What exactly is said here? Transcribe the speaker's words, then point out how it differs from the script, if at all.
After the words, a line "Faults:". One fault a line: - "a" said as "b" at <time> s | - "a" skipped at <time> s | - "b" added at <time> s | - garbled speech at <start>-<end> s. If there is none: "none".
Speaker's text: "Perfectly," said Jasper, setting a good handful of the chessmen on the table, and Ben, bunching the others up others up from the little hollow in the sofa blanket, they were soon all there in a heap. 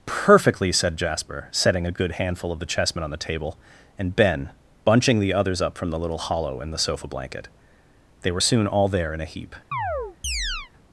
"Perfectly," said Jasper, setting a good handful of the chessmen on the table, and Ben, bunching the others up from the little hollow in the sofa blanket, they were soon all there in a heap.
Faults:
- "others up" skipped at 5.8 s